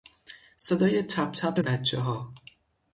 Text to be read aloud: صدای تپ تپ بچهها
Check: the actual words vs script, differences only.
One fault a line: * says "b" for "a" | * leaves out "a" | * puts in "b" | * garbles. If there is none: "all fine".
all fine